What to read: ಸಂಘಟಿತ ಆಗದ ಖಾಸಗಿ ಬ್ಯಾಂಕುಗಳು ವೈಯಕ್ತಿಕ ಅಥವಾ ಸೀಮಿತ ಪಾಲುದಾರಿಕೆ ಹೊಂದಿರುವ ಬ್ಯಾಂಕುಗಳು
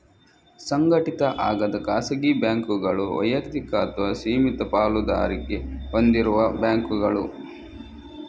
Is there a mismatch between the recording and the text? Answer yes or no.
no